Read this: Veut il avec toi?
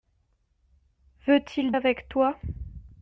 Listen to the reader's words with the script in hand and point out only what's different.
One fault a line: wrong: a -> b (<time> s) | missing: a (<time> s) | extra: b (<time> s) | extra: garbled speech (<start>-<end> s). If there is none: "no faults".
no faults